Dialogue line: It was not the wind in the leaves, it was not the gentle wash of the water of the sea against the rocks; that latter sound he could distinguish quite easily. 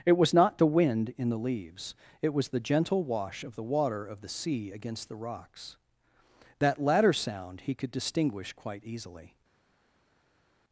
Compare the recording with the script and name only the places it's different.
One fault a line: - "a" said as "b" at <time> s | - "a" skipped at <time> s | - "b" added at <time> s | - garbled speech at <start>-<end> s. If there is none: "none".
- "not" skipped at 2.5 s